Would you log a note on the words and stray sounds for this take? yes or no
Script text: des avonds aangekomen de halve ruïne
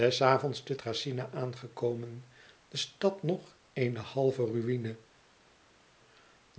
yes